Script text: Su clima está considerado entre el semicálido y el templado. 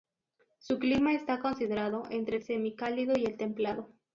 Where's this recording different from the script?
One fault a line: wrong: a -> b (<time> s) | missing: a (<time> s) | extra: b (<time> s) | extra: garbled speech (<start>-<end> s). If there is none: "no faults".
no faults